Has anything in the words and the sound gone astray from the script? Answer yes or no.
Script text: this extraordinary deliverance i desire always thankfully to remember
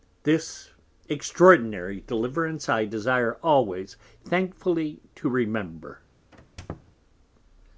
yes